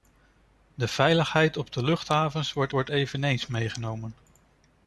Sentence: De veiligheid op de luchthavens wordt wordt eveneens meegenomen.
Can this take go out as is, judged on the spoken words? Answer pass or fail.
pass